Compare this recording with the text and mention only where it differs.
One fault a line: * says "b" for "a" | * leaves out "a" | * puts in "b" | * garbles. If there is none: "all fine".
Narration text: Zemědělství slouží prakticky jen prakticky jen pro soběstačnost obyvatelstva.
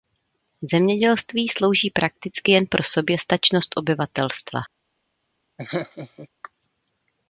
* leaves out "prakticky jen"